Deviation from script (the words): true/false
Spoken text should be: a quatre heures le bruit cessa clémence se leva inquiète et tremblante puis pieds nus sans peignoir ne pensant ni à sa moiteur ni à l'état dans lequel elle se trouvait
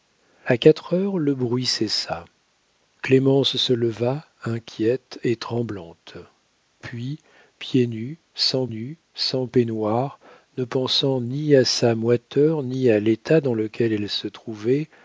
true